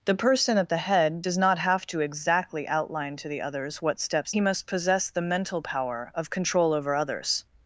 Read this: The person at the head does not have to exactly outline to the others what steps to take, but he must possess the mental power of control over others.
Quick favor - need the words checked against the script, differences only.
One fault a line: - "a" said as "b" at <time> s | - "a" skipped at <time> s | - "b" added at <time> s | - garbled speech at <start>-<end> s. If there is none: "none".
- "to take but" skipped at 4.3 s